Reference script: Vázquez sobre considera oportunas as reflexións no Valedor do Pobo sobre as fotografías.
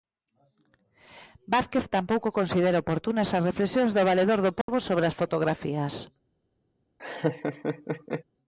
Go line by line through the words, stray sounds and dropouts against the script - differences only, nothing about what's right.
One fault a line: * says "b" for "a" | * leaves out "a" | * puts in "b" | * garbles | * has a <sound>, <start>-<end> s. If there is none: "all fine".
* says "tampouco" for "sobre"
* says "do" for "no"
* has a dropout, 4.6-4.7 s
* has a laugh, 7.0-8.2 s